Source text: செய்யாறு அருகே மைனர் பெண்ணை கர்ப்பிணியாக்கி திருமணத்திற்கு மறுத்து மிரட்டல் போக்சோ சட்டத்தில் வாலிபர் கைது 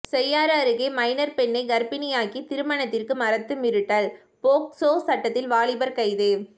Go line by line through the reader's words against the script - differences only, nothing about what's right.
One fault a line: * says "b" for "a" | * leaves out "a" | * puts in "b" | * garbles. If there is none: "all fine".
all fine